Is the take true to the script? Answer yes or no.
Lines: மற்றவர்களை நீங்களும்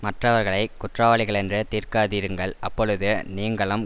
no